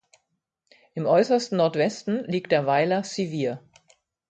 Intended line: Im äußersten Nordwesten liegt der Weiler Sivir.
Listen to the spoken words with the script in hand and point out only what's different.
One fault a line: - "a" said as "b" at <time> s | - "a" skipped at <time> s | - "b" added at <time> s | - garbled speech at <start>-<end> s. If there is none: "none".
none